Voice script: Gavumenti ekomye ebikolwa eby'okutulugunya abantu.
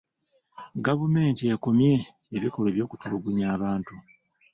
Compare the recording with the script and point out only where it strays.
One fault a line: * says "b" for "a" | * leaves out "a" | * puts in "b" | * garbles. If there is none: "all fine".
all fine